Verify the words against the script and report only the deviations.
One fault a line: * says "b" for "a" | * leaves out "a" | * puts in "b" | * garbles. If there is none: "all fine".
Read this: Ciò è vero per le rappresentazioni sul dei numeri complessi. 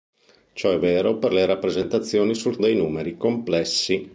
all fine